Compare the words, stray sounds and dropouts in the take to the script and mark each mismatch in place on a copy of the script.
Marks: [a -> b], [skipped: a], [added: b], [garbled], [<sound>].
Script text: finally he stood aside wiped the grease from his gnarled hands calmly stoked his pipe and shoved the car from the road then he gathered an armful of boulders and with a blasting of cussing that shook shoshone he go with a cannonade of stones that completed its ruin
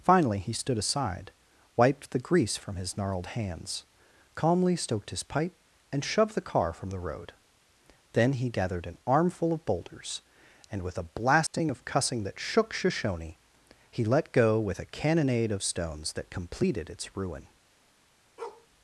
finally he stood aside wiped the grease from his gnarled hands calmly stoked his pipe and shoved the car from the road then he gathered an armful of boulders and with a blasting [dropout] of cussing that shook shoshone he [added: let] go with a cannonade of stones that completed its ruin [bark]